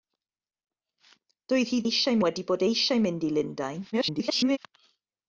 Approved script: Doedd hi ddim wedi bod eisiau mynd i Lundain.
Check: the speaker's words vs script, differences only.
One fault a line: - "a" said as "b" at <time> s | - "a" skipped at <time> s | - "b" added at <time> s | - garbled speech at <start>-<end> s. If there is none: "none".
- "ddim" said as "eisiau" at 1.9 s
- garbled speech at 3.9-4.6 s